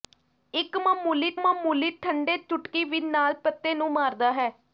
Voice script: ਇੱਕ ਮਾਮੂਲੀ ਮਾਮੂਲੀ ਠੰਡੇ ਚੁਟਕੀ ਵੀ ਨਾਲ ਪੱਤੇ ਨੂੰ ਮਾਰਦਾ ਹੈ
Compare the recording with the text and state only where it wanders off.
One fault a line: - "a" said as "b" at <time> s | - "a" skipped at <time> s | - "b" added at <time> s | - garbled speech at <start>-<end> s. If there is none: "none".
none